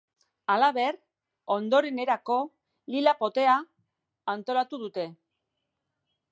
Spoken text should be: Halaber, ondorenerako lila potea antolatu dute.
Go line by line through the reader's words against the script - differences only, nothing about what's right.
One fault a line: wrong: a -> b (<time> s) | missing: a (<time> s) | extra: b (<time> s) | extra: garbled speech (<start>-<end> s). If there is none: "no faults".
no faults